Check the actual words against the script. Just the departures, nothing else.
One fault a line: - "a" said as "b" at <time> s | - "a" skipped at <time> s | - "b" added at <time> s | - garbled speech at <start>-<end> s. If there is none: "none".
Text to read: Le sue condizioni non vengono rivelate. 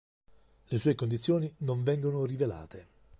none